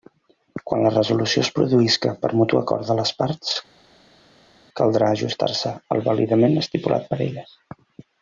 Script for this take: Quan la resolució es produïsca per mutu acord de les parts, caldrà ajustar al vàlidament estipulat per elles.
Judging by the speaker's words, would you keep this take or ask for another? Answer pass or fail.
fail